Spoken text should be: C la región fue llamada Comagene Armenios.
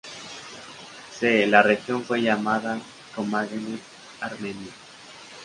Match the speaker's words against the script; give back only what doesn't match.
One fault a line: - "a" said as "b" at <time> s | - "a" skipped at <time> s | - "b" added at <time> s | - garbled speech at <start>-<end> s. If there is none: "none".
none